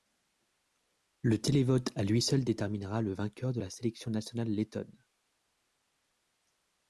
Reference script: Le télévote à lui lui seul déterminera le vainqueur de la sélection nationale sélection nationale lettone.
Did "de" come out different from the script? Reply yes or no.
no